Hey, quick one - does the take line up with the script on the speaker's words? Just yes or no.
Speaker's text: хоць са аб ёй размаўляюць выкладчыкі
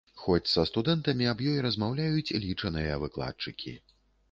no